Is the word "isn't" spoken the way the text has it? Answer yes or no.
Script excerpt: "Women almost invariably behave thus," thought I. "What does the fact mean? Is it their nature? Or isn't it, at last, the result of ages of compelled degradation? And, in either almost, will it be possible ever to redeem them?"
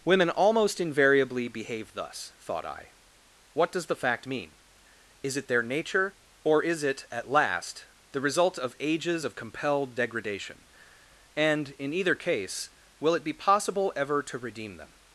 no